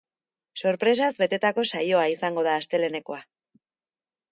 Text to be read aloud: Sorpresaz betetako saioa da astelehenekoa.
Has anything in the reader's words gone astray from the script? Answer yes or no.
yes